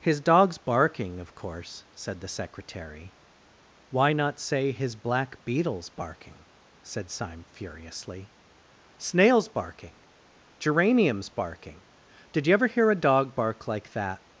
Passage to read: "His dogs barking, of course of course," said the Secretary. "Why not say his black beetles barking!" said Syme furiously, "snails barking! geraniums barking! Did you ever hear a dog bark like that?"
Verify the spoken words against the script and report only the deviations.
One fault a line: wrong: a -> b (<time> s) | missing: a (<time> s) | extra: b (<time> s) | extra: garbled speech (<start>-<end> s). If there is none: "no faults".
missing: of course (1.9 s)